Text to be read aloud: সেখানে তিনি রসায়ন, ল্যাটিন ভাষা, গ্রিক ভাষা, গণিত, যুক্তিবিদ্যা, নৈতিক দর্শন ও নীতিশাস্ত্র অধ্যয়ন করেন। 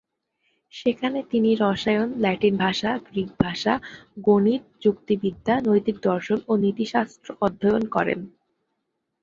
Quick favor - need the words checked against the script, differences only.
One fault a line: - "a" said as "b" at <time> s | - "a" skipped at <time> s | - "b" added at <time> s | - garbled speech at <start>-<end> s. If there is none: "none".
none